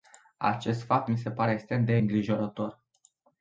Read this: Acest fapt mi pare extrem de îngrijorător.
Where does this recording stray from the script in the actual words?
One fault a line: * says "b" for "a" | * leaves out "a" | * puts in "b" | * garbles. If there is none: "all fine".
* puts in "se"